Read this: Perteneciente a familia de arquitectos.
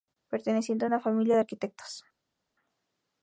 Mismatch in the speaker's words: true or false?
true